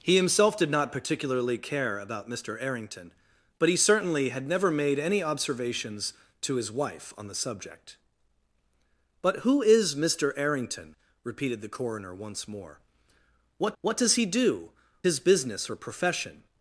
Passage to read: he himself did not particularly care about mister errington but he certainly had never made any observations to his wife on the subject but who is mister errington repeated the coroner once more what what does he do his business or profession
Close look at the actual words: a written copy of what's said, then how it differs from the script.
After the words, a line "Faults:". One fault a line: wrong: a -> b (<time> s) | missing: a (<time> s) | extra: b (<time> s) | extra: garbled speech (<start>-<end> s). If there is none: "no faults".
he himself did not particularly care about mister errington but he certainly had never made any observations to his wife on the subject but who is mister errington repeated the coroner once more what what does he do his business or profession
Faults:
no faults